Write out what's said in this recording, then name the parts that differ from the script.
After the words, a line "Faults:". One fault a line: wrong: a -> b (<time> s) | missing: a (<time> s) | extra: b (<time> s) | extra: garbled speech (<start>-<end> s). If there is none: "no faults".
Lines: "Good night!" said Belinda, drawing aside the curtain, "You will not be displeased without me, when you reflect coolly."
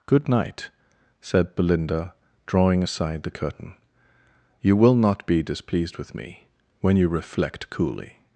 "Good night!" said Belinda, drawing aside the curtain, "You will not be displeased with me, when you reflect coolly."
Faults:
wrong: without -> with (6.0 s)